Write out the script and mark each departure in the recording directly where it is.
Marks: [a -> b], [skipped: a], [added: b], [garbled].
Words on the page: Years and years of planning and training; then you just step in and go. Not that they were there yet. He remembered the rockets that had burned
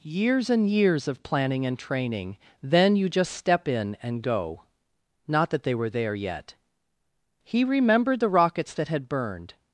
Years and years of planning and training; then you just step in and go. Not that they were there yet. He remembered the rockets that had burned